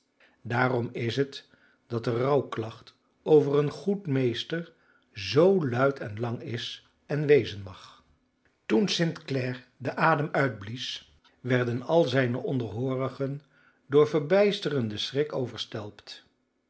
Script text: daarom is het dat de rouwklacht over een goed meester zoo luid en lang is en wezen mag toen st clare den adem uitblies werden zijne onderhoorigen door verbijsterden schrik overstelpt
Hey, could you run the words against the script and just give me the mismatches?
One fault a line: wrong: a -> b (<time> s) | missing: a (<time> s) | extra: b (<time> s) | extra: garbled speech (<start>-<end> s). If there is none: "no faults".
extra: al (11.8 s)